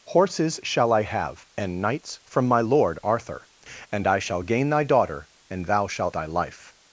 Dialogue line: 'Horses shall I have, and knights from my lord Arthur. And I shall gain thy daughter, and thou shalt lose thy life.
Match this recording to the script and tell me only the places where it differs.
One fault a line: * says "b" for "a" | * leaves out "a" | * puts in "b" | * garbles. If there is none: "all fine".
* leaves out "lose"